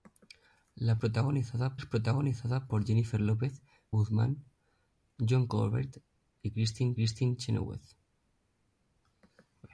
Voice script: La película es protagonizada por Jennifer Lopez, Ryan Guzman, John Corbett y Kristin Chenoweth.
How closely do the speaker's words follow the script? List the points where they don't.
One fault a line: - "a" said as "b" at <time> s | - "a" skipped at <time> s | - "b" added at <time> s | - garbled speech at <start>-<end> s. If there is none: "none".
- "película" said as "protagonizada" at 0.9 s
- "Ryan" skipped at 3.6 s
- "Kristin" added at 6.9 s